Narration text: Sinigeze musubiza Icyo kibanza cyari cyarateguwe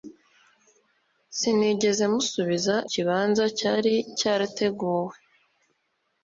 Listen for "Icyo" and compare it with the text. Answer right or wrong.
wrong